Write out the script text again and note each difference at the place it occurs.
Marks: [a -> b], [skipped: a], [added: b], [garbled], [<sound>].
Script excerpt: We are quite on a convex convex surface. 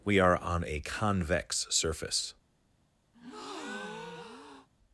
We are [skipped: quite] on a convex [skipped: convex] surface. [breath]